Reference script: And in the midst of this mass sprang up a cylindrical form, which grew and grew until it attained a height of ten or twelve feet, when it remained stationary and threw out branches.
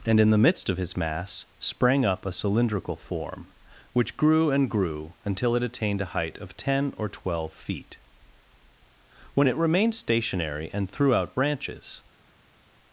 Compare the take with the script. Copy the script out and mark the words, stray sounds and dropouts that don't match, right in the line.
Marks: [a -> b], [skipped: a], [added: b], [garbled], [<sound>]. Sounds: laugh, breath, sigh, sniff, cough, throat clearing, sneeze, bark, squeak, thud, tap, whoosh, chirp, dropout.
And in the midst of [this -> his] mass sprang up a cylindrical form, which grew and grew until it attained a height of ten or twelve feet, when it remained stationary and threw out branches.